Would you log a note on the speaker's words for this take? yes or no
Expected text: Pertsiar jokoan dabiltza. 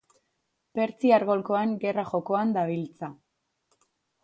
yes